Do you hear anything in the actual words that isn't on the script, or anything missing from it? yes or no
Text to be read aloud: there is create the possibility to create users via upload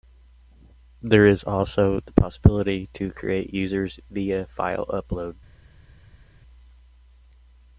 yes